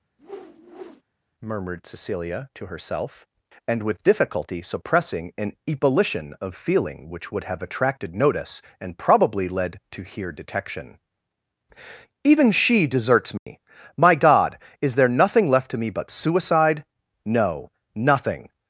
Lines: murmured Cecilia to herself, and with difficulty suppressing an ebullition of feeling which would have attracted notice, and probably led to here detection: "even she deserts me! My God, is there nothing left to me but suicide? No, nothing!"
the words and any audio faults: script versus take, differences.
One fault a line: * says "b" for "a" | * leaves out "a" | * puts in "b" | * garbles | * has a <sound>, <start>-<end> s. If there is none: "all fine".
* has a whoosh, 0.2-1.0 s
* has a dropout, 13.4-13.5 s